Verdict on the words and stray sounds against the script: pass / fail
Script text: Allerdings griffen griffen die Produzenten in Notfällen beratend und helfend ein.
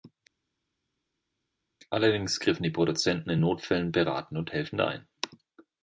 fail